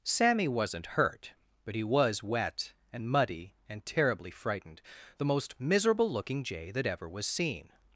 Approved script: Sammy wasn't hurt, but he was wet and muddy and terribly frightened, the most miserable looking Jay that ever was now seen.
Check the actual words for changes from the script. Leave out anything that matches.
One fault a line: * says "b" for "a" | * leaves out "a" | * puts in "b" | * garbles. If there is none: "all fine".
* leaves out "now"